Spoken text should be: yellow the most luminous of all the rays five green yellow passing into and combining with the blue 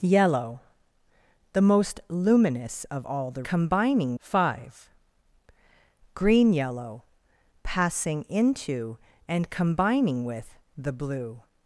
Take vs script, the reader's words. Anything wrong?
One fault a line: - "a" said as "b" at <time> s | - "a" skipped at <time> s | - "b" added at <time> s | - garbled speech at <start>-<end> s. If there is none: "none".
- "rays" said as "combining" at 3.4 s